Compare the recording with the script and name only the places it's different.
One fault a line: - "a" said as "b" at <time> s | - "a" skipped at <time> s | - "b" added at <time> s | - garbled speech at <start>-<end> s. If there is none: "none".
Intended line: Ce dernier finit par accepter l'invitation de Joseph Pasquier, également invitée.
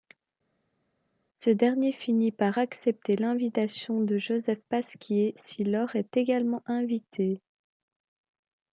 - "si Laure est" added at 5.4 s